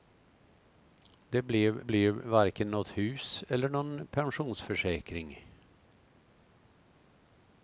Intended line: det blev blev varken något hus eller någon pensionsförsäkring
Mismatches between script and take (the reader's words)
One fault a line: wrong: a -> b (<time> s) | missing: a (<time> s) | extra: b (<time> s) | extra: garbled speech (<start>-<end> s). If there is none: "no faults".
no faults